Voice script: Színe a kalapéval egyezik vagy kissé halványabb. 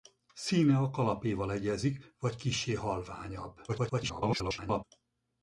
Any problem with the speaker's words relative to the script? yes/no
yes